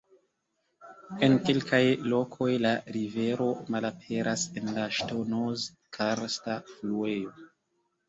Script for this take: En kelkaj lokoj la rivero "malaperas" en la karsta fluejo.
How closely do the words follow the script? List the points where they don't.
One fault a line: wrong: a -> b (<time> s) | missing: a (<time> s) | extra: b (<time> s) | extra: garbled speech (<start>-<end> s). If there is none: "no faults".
extra: ŝtonoz (5.0 s)